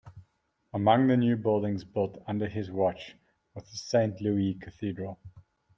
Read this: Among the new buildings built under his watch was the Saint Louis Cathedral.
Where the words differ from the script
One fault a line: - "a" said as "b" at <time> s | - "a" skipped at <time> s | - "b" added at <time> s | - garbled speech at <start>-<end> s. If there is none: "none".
none